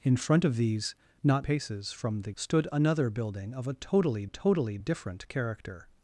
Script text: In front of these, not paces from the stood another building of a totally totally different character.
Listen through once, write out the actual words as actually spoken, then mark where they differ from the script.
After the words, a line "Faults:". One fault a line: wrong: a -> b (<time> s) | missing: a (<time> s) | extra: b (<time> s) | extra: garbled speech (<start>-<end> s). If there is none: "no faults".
In front of these, not paces from the stood another building of a totally totally different character.
Faults:
no faults